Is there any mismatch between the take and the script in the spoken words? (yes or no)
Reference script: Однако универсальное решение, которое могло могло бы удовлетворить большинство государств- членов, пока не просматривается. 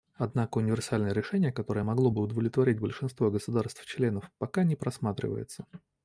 yes